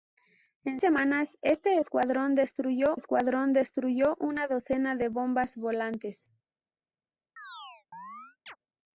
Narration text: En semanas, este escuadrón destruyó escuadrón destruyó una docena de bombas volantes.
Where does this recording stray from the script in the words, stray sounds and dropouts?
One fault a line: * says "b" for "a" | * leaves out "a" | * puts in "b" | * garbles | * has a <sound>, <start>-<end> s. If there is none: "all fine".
* has a chirp, 7.4-8.6 s